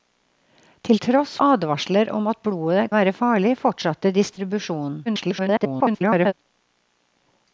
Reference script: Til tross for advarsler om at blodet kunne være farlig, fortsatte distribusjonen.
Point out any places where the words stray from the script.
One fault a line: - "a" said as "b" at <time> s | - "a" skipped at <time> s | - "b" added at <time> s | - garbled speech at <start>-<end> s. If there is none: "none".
- "for" skipped at 1.3 s
- "kunne" skipped at 2.9 s
- garbled speech at 5.1-6.3 s